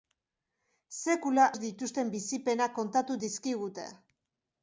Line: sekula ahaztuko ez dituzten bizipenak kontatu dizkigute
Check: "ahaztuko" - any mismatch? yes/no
yes